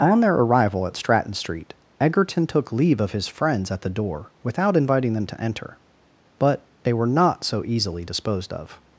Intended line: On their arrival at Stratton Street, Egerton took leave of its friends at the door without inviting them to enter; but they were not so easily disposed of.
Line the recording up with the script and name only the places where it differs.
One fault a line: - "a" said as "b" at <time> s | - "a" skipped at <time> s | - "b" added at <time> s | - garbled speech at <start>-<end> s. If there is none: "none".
- "its" said as "his" at 3.1 s